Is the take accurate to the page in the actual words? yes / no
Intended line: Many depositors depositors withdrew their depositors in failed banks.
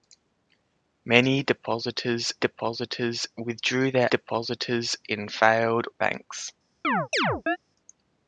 yes